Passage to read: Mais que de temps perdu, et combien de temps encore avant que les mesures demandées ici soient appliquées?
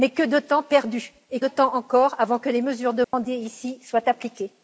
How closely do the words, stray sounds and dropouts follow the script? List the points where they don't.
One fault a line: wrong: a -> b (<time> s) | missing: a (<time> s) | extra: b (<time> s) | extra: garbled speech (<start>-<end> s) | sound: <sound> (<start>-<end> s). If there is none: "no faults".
missing: combien (1.4 s)
sound: dropout (3.0-3.1 s)